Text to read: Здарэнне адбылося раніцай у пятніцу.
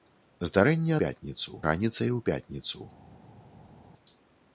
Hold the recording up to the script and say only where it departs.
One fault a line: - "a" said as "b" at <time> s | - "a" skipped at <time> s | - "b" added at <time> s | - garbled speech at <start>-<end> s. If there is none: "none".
- "адбылося" said as "пятніцу" at 1.0 s